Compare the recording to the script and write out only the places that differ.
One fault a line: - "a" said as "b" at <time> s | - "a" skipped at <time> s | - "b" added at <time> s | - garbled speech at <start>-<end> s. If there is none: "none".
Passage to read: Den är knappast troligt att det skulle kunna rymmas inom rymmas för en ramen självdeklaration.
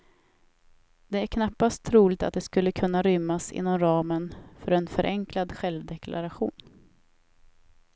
- "Den" said as "Det" at 1.1 s
- "rymmas" said as "ramen" at 3.8 s
- "ramen" said as "förenklad" at 4.9 s